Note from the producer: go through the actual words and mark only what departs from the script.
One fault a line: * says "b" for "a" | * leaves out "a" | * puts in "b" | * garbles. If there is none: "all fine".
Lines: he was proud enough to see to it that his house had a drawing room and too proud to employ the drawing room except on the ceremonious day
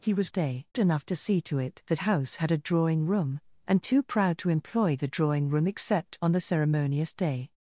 * says "day" for "proud"
* leaves out "his"